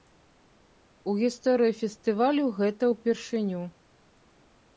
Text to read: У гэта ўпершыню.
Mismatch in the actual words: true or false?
true